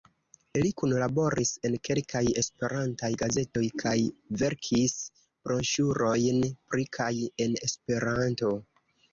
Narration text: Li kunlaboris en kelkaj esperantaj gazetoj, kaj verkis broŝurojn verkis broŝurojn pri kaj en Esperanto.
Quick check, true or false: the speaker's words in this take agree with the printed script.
false